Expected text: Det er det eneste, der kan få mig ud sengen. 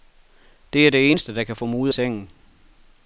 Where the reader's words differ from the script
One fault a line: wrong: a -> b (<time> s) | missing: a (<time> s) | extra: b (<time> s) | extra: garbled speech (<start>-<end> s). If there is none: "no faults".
no faults